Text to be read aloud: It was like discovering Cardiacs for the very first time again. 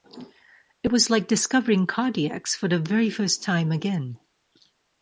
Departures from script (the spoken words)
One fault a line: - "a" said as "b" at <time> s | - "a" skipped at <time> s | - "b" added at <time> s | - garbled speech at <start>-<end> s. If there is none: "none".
none